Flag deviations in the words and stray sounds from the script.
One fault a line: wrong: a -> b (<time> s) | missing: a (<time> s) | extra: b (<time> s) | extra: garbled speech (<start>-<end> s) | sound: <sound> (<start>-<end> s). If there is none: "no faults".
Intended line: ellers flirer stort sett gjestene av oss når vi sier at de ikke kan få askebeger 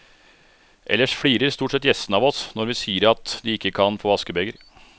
no faults